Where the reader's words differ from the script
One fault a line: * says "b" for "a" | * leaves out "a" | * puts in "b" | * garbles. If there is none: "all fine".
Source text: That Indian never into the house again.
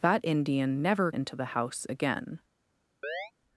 all fine